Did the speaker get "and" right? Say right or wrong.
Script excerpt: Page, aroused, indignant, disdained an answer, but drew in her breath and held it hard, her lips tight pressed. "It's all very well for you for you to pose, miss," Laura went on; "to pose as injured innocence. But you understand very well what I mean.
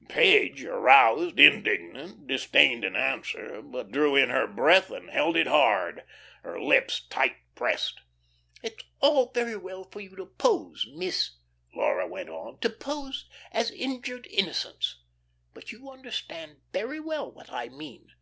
right